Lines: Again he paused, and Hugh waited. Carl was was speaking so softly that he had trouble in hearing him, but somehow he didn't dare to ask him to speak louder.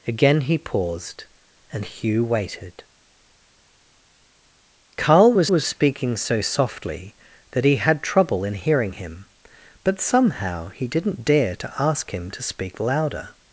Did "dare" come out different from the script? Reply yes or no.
no